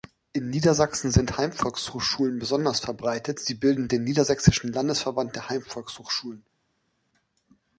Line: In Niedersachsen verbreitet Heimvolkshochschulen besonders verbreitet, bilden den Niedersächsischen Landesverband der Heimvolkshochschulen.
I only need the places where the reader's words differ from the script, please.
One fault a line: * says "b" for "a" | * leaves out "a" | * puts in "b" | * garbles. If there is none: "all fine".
* says "sind" for "verbreitet"
* puts in "sie"